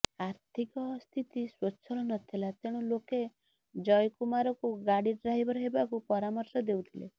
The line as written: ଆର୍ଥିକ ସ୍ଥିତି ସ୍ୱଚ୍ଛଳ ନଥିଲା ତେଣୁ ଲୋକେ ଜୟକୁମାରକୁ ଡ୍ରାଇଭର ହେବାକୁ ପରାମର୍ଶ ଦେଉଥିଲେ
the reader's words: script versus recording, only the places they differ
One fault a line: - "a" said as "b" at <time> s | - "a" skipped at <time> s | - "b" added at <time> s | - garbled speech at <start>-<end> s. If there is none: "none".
- "ଗାଡ଼ି" added at 4.9 s